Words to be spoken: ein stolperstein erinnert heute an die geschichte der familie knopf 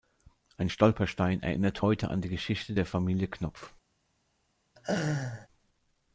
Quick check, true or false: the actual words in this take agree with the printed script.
true